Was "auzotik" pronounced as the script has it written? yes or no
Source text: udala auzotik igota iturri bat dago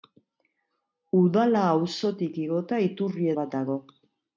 yes